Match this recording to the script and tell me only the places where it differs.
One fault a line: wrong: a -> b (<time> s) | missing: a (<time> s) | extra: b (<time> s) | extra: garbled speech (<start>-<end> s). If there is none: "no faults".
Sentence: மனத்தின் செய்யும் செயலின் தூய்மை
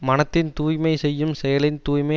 extra: தூய்மை (0.5 s)